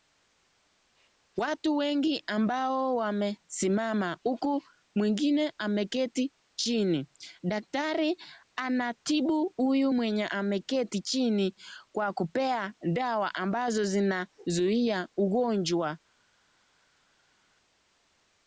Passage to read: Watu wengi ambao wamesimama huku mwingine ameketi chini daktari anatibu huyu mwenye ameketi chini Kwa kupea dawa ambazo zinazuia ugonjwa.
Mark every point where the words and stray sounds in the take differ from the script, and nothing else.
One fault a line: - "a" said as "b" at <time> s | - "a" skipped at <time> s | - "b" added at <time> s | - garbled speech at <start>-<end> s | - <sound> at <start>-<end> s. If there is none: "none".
none